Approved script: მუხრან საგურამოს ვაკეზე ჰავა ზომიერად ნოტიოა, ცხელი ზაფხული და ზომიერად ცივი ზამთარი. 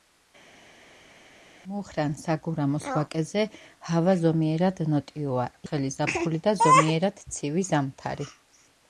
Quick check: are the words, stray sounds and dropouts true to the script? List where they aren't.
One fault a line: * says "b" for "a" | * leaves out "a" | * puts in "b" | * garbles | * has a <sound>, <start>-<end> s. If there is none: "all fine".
all fine